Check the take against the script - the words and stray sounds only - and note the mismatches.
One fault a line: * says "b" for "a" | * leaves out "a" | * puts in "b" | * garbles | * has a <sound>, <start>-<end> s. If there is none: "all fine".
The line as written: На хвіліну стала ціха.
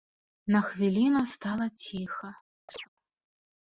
* has a chirp, 2.7-2.9 s